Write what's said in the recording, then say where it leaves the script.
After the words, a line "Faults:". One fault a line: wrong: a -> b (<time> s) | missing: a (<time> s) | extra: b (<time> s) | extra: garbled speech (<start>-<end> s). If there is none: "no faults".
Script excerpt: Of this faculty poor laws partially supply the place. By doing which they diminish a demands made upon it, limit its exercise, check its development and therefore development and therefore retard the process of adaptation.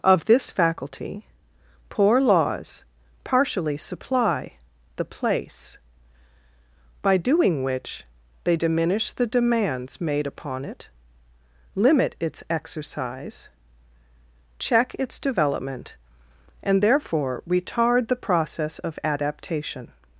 Of this faculty poor laws partially supply the place. By doing which they diminish the demands made upon it, limit its exercise, check its development and therefore retard the process of adaptation.
Faults:
wrong: a -> the (9.1 s)
missing: development and therefore (17.4 s)